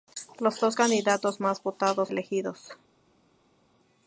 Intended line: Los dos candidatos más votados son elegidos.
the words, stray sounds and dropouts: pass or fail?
fail